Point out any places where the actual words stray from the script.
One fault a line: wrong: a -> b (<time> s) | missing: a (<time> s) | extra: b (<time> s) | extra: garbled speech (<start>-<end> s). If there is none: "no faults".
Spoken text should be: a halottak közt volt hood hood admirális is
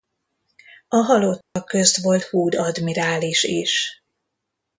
missing: hood (2.5 s)